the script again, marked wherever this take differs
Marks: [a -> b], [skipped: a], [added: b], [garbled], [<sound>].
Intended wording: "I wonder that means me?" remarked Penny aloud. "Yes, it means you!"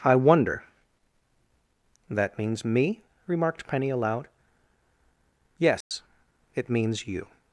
"I wonder that means me?" remarked Penny aloud. "Yes, [dropout] it means you!"